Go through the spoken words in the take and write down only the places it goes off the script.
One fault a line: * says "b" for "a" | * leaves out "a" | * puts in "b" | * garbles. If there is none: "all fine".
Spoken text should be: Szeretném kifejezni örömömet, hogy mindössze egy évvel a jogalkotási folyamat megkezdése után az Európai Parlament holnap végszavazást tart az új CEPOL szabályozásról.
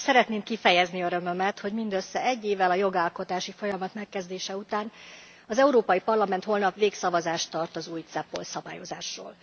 all fine